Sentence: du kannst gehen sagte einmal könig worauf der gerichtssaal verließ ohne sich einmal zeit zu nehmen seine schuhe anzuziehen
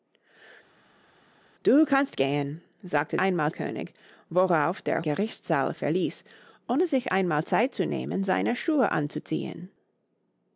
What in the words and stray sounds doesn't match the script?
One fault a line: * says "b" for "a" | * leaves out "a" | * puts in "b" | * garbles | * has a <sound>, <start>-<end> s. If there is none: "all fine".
all fine